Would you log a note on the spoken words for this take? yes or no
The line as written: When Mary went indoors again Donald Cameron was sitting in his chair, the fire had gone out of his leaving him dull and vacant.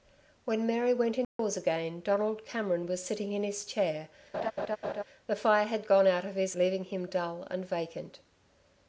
no